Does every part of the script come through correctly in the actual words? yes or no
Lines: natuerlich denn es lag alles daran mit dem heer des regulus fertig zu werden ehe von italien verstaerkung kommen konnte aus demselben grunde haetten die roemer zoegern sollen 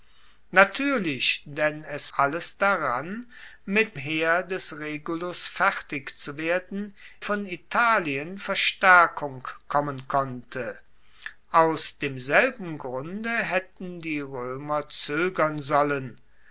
no